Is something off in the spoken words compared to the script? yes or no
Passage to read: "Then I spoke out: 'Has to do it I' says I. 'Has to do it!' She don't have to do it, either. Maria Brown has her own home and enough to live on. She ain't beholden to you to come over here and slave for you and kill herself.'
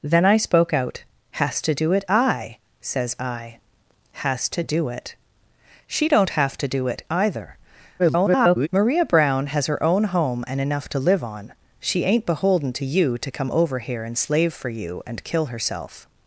yes